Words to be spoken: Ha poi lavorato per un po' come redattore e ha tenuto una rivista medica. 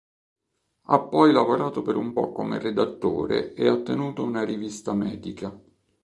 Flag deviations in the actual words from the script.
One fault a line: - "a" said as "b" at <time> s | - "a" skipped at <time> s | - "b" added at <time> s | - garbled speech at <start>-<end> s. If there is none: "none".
none